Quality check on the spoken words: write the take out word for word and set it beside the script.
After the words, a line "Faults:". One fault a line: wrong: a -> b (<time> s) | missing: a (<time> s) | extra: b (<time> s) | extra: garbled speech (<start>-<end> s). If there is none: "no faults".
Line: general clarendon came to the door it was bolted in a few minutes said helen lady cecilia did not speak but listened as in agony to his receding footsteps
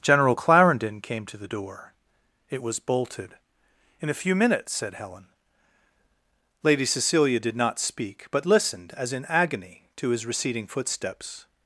general clarendon came to the door it was bolted in a few minutes said helen lady cecilia did not speak but listened as in agony to his receding footsteps
Faults:
no faults